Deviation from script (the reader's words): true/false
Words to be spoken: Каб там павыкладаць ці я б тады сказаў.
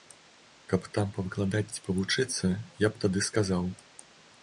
true